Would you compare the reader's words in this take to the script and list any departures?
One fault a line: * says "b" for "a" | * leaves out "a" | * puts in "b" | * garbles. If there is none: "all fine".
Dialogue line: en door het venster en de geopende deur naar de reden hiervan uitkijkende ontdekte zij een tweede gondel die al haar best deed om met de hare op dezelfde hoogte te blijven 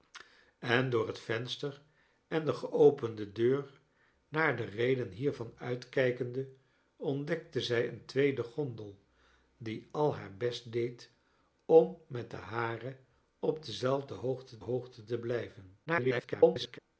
* puts in "hoogte"
* garbles